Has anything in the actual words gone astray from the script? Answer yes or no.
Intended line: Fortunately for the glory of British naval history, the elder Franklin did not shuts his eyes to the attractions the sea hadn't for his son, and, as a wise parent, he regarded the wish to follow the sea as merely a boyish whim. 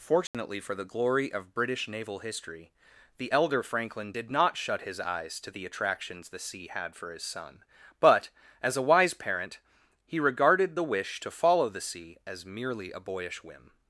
yes